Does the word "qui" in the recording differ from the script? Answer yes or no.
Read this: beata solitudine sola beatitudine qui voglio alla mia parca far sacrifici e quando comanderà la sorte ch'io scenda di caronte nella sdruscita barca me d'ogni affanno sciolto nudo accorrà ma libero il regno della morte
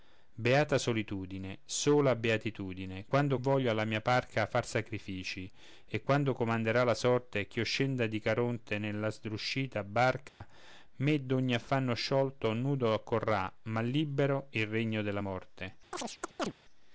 yes